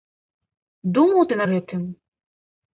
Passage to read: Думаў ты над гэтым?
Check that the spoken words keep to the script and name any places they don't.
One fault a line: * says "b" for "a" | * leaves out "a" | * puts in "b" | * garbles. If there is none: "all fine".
* leaves out "над"